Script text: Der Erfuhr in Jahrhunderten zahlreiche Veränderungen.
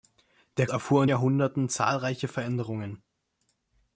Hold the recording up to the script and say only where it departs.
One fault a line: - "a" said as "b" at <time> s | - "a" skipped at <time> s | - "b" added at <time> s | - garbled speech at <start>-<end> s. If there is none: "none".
none